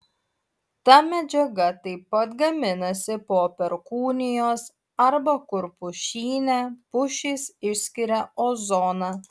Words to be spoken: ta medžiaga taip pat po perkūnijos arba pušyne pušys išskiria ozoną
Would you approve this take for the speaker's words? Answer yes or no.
no